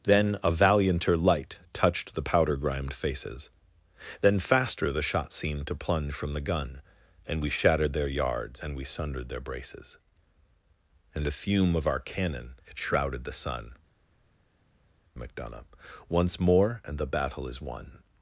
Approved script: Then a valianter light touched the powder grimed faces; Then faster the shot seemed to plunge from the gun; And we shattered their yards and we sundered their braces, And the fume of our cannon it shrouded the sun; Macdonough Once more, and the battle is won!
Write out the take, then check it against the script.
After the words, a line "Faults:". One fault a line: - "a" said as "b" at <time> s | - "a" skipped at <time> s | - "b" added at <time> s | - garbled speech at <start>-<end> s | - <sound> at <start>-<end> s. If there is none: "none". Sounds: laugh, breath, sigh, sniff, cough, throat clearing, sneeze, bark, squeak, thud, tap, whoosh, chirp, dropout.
Then a valianter light touched the powder grimed faces; Then faster the shot seemed to plunge from the gun; And we shattered their yards and we sundered their braces, And the fume of our cannon it shrouded the sun; Macdonough Once more, and the battle is won!
Faults:
none